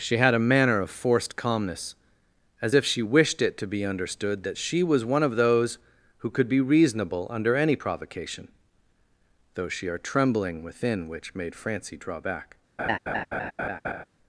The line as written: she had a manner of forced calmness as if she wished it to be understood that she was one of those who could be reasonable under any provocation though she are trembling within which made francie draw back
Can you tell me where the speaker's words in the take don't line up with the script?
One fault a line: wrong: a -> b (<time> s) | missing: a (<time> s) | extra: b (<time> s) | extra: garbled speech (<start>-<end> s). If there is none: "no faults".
no faults